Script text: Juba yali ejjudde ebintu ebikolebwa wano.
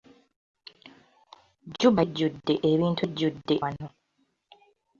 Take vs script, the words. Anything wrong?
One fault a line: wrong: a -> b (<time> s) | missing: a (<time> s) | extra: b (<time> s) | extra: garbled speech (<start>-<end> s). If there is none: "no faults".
missing: yali (2.0 s)
wrong: ebikolebwa -> ejjudde (3.0 s)